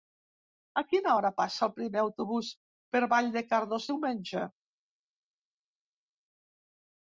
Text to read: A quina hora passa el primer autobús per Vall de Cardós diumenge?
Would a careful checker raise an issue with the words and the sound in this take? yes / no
no